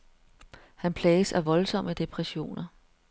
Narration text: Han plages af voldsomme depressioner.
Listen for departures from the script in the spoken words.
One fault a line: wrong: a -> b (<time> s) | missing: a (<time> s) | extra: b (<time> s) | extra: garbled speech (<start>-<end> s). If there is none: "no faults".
no faults